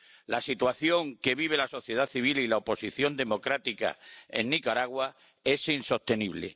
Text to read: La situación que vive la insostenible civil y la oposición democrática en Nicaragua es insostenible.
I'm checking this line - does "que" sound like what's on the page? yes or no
yes